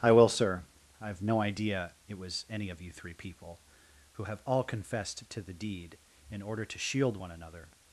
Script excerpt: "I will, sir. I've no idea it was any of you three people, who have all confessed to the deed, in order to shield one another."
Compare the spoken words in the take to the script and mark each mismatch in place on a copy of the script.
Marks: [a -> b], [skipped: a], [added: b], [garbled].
"I will, sir. I've no idea it was any of you three people, who have all confessed to the deed, in order to shield one another."